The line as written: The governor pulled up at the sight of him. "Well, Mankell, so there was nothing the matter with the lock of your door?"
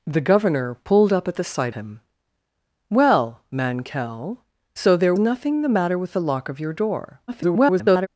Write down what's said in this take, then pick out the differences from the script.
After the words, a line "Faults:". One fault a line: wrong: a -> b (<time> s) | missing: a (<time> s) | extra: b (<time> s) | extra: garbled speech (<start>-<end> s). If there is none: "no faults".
The governor pulled up at the sight him. "Well, Mankell, so there nothing the matter with the lock of your door?" [garbled]
Faults:
missing: of (1.7 s)
missing: was (5.1 s)
extra: garbled speech (7.3-8.1 s)